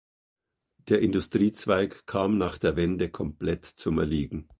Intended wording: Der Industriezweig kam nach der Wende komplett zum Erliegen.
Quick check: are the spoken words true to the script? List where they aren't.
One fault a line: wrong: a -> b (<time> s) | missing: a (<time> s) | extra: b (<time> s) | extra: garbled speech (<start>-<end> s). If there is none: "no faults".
no faults